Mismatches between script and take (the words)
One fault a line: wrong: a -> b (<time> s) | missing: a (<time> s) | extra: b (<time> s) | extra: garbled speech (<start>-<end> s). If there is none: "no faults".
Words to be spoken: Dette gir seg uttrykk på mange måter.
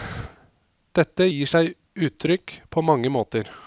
no faults